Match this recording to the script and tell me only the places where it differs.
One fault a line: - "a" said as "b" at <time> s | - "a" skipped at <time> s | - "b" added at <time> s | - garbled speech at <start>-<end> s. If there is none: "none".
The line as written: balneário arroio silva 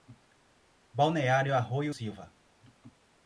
none